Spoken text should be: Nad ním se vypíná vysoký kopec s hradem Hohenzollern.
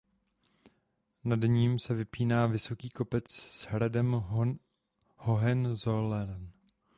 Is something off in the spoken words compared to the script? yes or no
no